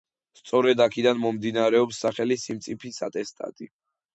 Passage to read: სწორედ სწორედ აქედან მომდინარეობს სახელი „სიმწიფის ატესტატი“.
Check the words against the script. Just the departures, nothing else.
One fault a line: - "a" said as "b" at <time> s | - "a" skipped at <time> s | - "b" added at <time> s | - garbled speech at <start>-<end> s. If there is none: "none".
- "სწორედ" skipped at 0.8 s